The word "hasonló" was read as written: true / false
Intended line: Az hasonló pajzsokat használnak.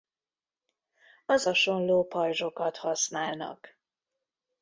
true